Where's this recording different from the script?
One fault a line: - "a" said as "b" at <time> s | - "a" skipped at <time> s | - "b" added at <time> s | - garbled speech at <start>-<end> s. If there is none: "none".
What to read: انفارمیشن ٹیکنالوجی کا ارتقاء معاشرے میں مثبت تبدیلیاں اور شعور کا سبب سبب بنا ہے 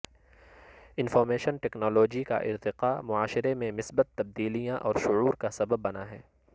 - "سبب" skipped at 5.8 s